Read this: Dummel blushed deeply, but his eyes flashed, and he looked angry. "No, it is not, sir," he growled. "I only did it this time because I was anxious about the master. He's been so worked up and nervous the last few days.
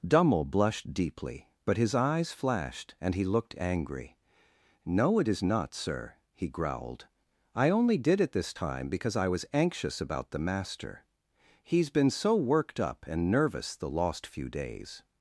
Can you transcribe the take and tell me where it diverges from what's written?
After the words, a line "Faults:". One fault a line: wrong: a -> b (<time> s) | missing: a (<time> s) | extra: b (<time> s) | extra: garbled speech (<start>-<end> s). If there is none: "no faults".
Dummel blushed deeply, but his eyes flashed, and he looked angry. "No, it is not, sir," he growled. "I only did it this time because I was anxious about the master. He's been so worked up and nervous the lost few days.
Faults:
wrong: last -> lost (13.9 s)